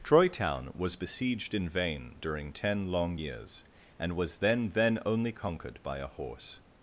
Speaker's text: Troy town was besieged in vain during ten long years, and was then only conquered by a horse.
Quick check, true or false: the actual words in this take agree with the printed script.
false